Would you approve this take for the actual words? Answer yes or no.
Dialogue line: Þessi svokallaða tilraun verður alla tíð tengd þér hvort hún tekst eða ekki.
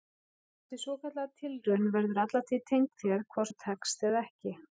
yes